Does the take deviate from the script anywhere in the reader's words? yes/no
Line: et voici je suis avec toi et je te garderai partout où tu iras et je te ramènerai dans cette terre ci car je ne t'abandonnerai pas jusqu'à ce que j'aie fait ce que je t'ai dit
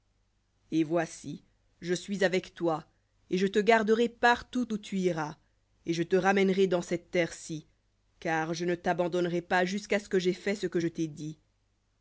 no